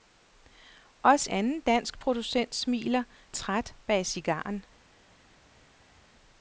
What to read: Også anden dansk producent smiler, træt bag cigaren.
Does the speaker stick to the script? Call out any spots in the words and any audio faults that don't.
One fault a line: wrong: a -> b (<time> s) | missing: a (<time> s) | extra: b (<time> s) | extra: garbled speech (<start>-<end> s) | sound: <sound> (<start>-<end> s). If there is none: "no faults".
no faults